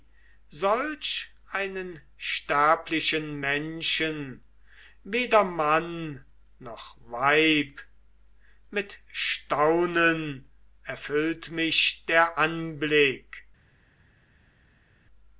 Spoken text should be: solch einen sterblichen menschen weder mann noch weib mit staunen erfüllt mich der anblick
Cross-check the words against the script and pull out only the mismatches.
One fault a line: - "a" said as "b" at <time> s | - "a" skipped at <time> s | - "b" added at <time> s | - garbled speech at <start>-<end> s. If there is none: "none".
none